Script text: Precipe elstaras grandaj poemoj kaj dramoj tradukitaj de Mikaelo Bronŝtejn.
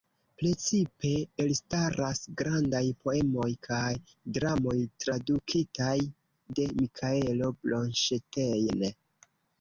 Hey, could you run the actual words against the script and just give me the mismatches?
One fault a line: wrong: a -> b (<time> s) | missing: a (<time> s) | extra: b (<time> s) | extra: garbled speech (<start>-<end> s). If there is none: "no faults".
no faults